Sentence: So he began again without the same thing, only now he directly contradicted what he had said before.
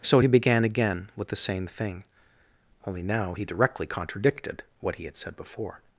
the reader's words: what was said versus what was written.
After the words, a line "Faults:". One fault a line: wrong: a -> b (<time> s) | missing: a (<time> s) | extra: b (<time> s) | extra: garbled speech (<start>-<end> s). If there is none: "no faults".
So he began again with the same thing, only now he directly contradicted what he had said before.
Faults:
wrong: without -> with (1.2 s)